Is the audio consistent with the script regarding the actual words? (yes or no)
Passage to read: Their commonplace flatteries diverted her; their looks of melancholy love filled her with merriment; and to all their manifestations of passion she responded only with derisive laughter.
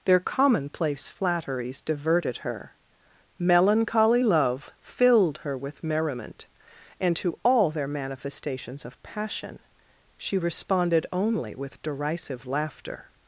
no